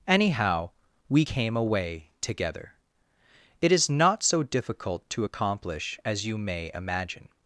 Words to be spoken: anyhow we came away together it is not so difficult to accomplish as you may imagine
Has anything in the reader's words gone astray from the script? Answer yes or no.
no